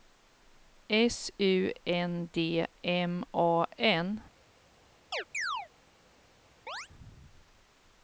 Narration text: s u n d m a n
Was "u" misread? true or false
false